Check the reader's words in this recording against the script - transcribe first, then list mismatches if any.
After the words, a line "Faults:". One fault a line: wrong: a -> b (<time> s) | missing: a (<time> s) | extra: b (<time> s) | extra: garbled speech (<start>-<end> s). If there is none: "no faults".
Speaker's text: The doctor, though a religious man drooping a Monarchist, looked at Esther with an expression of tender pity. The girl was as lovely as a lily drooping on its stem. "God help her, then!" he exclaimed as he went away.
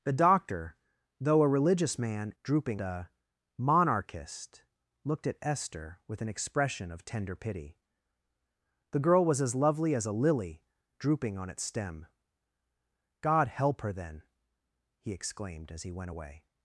The doctor, though a religious man drooping a Monarchist, looked at Esther with an expression of tender pity. The girl was as lovely as a lily drooping on its stem. "God help her, then!" he exclaimed as he went away.
Faults:
no faults